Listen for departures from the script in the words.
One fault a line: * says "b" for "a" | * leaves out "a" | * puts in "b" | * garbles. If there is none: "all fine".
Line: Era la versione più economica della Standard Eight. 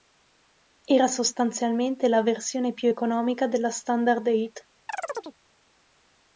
* puts in "sostanzialmente"